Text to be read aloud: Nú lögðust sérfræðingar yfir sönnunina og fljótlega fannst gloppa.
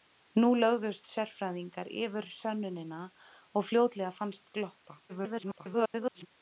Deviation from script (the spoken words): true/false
true